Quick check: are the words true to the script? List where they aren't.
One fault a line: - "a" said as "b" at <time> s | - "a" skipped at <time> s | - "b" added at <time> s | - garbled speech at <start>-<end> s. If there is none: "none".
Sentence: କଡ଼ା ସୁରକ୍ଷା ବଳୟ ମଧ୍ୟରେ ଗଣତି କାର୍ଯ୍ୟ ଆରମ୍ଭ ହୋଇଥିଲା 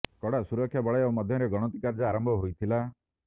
none